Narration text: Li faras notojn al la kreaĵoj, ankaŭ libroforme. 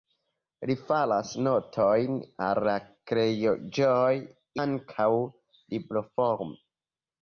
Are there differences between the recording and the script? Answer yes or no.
no